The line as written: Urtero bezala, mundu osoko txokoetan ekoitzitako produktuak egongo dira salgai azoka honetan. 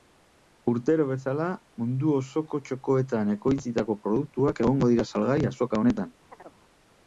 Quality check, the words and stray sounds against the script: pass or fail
fail